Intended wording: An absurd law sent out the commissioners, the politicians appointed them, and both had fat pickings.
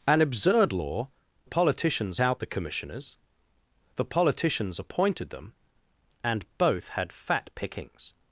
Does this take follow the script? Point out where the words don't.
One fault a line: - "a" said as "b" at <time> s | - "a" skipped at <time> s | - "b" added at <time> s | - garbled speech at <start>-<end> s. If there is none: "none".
- "sent" said as "politicians" at 1.4 s